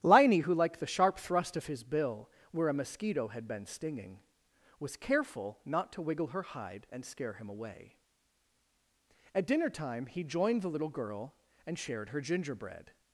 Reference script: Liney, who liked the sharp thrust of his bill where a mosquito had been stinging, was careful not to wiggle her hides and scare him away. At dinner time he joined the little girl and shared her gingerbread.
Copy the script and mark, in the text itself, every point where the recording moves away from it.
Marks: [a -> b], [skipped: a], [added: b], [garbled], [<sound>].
Liney, who liked the sharp thrust of his bill where a mosquito had been stinging, was careful not to wiggle her [hides -> hide] and scare him away. At dinner time he joined the little girl and shared her gingerbread.